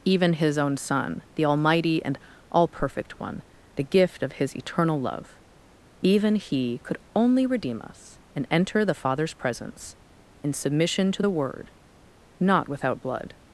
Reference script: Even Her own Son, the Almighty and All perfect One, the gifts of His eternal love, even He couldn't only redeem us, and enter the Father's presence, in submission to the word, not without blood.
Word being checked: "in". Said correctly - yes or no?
yes